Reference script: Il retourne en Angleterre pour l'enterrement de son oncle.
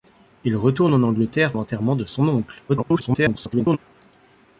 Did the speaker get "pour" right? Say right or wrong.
wrong